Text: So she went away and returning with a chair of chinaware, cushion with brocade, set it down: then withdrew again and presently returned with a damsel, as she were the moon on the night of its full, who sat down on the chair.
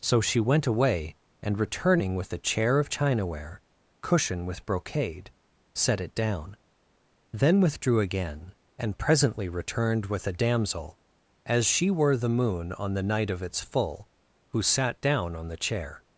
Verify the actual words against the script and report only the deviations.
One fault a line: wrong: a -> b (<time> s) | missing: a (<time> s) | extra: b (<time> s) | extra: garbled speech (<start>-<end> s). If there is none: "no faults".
no faults